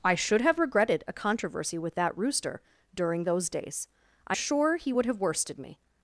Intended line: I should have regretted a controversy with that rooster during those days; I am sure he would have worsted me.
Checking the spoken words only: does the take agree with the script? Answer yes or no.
no